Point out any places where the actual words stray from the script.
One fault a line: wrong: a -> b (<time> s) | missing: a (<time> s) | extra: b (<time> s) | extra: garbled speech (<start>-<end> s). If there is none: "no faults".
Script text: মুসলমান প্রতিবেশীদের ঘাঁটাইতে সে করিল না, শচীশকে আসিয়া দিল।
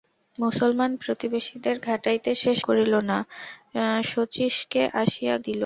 no faults